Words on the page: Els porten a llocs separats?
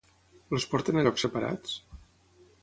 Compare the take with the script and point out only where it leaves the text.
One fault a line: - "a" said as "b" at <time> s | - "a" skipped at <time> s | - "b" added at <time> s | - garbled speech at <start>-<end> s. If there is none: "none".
none